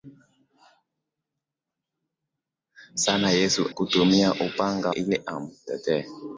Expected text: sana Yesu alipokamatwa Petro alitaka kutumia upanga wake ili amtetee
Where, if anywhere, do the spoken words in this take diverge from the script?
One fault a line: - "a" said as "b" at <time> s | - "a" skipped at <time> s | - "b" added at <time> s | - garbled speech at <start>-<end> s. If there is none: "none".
- "alipokamatwa Petro alitaka" skipped at 3.7 s
- "wake" skipped at 4.9 s